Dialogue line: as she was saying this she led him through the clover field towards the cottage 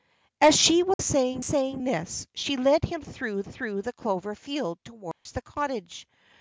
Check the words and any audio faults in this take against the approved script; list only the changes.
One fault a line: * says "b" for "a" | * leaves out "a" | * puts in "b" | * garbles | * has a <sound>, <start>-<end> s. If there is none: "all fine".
* has a dropout, 0.9-1.0 s
* puts in "saying"
* puts in "through"
* has a dropout, 5.1-5.3 s